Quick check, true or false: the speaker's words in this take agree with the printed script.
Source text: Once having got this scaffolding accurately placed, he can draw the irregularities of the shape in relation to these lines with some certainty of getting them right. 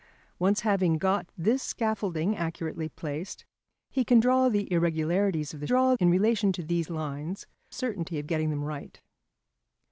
false